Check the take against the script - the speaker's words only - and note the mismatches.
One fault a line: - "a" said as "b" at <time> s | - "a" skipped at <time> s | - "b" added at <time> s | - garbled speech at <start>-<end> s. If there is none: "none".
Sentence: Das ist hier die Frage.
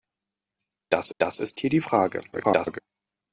- "das" added at 1.2 s
- garbled speech at 2.3-2.8 s